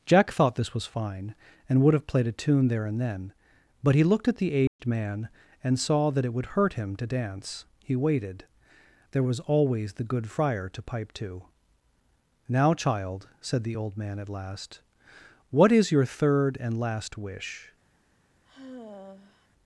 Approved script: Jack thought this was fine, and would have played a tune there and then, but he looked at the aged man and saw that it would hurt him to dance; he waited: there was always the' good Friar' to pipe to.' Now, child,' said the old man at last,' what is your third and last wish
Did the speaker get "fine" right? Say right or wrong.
right